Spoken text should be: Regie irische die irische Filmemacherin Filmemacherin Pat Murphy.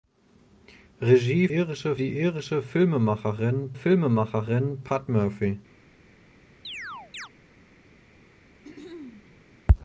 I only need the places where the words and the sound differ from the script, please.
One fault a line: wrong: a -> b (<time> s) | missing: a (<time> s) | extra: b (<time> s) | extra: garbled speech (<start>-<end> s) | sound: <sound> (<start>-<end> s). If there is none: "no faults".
sound: chirp (6.6-7.3 s)
sound: throat clearing (8.6-9.5 s)